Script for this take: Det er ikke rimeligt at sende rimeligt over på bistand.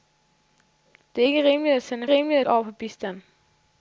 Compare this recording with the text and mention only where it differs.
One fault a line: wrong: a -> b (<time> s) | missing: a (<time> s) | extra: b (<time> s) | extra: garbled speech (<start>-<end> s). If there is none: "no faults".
no faults